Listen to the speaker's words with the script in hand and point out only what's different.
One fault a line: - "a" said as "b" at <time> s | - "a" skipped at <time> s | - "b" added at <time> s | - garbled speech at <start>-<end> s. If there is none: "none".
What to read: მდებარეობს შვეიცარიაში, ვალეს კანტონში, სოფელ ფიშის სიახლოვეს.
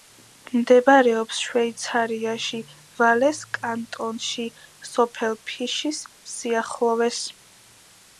none